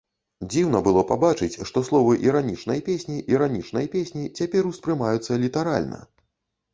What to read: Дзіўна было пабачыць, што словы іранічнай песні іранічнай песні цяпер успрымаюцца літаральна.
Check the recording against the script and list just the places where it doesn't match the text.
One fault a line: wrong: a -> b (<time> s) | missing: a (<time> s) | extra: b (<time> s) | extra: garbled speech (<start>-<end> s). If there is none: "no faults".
no faults